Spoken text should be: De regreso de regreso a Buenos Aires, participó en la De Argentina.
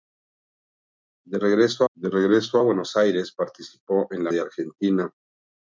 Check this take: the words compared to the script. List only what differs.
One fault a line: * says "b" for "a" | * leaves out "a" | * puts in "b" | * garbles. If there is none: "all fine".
all fine